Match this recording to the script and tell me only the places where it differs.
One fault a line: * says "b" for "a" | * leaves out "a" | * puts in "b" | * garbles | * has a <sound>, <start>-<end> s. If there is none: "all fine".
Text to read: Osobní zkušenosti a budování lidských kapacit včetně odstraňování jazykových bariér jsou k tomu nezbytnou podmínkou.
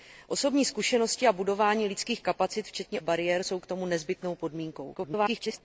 * leaves out "odstraňování jazykových"
* garbles